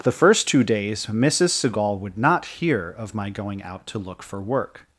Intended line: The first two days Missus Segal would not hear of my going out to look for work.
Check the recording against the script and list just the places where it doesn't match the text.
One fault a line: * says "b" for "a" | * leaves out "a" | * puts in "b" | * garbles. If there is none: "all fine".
all fine